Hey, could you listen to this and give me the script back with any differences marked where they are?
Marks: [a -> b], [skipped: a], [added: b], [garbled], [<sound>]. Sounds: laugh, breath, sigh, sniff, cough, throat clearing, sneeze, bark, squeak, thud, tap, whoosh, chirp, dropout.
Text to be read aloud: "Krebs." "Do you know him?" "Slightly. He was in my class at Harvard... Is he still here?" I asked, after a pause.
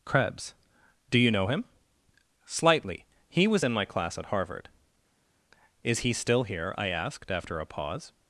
"Krebs." "Do you know him?" "Slightly. He was in my class at Harvard... Is he still here?" I asked, after a pause.